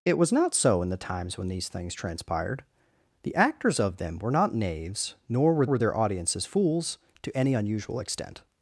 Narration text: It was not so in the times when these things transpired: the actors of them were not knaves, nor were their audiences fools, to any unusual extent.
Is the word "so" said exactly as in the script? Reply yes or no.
yes